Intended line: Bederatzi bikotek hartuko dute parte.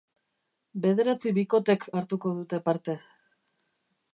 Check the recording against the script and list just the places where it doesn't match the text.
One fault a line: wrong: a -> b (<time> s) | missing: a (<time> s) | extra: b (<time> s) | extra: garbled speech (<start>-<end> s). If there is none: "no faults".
no faults